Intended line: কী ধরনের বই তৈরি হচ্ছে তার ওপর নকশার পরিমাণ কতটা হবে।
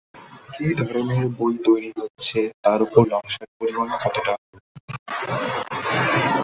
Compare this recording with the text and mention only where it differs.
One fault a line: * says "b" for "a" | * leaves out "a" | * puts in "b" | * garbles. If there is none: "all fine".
all fine